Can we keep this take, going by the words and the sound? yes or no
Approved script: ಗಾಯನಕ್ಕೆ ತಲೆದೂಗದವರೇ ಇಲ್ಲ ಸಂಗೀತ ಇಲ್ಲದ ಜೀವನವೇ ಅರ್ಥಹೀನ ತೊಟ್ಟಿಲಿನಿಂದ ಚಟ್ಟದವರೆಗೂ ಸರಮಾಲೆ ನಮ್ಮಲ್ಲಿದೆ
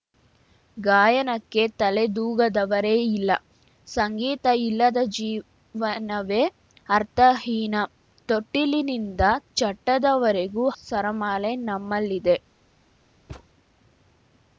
no